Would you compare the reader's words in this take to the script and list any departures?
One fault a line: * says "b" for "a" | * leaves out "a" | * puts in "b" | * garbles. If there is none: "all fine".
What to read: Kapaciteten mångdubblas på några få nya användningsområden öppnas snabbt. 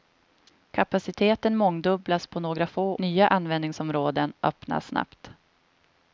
all fine